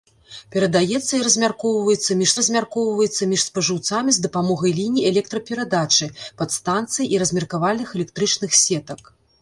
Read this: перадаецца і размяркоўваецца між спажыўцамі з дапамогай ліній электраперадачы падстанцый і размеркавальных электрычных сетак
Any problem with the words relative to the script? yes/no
yes